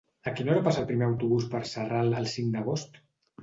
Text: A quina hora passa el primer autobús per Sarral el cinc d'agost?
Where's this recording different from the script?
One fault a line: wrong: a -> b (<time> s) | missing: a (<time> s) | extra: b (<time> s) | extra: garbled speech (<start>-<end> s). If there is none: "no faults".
no faults